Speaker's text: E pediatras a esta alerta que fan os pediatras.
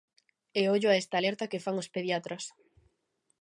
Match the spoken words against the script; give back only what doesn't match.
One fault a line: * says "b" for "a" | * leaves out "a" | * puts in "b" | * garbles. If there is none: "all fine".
* says "ollo" for "pediatras"